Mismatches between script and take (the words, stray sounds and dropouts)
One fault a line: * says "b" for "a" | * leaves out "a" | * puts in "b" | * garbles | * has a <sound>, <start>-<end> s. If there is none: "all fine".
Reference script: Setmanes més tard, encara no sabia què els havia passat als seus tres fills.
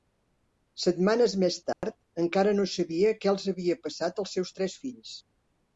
* has a dropout, 1.7-1.8 s